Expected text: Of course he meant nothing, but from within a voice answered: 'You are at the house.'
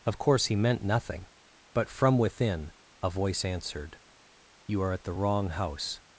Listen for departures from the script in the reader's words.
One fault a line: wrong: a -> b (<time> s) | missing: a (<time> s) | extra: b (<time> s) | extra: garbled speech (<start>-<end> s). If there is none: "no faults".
extra: wrong (5.1 s)